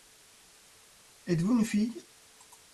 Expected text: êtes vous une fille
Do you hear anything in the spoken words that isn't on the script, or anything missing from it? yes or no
no